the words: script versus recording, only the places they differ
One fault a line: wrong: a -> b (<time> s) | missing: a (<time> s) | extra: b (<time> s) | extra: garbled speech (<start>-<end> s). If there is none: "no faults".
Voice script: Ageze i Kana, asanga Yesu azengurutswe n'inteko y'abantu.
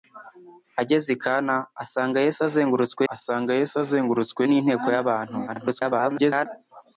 extra: asanga Yesu azengurutswe (3.1 s)
extra: garbled speech (5.5-6.5 s)